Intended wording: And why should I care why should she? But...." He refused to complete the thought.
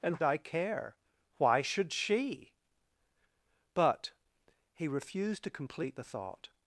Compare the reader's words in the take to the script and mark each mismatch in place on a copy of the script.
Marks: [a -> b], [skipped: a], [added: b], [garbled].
And [skipped: why should] I care why should she? But...." He refused to complete the thought.